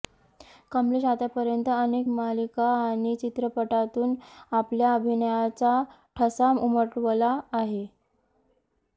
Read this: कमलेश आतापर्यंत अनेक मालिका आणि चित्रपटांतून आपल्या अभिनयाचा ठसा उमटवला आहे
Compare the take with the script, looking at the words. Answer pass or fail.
pass